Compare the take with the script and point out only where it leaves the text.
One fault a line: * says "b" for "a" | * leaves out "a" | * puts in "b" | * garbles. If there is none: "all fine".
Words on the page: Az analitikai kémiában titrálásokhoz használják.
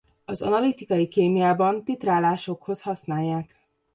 all fine